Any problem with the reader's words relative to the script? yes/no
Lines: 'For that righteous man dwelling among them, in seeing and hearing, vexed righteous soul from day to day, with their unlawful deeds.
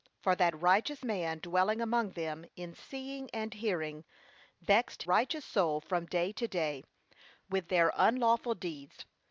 no